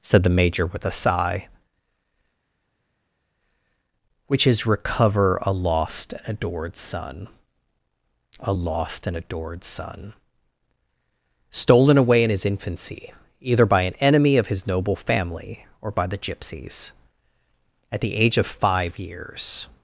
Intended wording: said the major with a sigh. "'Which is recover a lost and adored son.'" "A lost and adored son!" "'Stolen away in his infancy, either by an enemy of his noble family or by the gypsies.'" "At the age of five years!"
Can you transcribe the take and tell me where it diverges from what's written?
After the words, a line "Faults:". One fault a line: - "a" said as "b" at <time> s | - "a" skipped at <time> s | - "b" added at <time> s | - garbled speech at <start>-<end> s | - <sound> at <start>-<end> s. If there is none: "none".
said the major with a sigh. "'Which is recover a lost and adored son.'" "A lost and adored son!" "'Stolen away in his infancy, either by an enemy of his noble family or by the gypsies.'" "At the age of five years!"
Faults:
none